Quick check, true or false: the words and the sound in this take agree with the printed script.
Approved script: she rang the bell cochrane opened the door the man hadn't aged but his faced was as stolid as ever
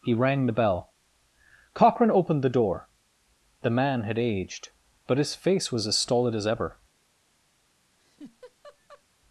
false